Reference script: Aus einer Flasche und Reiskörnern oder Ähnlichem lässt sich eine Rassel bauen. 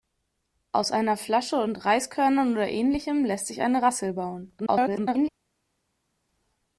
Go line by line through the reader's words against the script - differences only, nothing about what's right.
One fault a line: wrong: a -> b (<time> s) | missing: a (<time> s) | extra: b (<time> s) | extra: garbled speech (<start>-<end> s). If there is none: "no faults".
extra: garbled speech (4.6-5.3 s)